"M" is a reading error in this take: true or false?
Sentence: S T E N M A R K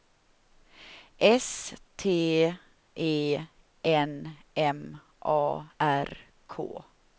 false